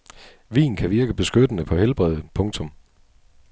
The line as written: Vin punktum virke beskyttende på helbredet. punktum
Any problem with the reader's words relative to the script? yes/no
yes